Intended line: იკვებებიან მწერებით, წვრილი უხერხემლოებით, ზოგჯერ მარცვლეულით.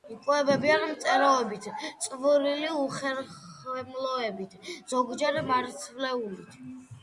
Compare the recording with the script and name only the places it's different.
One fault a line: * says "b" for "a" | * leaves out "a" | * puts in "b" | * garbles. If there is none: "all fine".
all fine